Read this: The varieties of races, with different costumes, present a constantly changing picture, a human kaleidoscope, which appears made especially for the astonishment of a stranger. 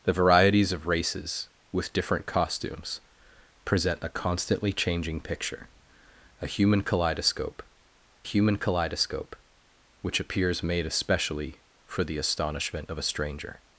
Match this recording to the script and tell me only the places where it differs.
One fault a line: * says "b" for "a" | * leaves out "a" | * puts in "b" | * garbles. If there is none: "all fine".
* puts in "human kaleidoscope"